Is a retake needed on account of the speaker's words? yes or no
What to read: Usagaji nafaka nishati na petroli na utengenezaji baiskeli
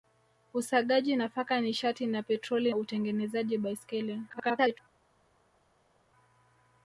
yes